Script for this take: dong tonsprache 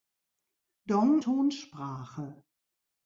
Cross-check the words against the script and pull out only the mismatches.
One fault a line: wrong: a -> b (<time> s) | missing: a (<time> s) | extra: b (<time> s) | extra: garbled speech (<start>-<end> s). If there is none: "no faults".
no faults